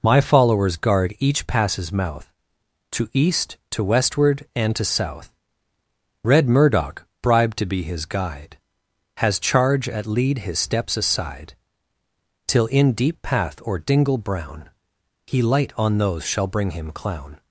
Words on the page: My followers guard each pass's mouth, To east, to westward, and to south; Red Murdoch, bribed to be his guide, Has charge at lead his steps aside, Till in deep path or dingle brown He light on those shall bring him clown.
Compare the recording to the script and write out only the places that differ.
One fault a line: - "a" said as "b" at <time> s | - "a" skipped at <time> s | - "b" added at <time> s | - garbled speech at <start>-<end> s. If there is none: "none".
none